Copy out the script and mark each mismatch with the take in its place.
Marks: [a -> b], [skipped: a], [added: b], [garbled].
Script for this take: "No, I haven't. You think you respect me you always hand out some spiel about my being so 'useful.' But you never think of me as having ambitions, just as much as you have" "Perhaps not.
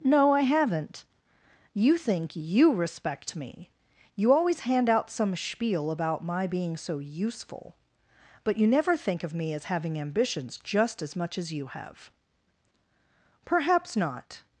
"No, I haven't. You think you respect me you always hand out some spiel about my being so 'useful.' But you never think of me as having ambitions, just as much as you have" "Perhaps not.